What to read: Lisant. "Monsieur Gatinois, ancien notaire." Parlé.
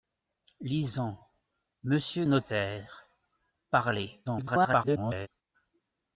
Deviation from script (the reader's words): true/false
true